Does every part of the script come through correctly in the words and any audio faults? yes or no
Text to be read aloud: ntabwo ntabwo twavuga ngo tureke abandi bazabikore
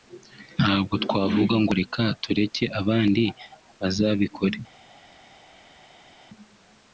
no